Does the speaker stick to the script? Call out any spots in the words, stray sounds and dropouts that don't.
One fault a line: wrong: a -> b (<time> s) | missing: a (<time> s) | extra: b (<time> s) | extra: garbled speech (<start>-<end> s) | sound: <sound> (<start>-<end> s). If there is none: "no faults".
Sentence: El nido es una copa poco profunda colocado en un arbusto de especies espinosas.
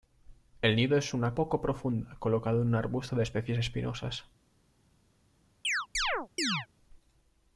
missing: copa (1.4 s)
sound: chirp (5.6-6.7 s)